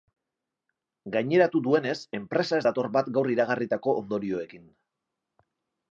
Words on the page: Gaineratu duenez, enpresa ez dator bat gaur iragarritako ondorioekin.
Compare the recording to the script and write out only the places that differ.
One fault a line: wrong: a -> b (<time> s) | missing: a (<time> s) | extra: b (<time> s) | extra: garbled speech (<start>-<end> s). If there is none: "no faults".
no faults